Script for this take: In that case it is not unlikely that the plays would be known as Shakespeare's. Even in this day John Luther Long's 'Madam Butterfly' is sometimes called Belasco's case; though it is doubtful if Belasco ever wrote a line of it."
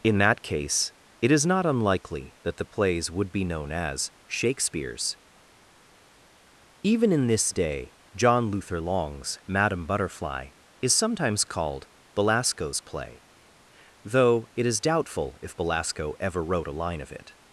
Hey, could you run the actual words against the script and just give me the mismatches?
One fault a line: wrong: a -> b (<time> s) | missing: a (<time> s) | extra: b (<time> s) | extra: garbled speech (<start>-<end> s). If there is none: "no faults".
wrong: case -> play (12.8 s)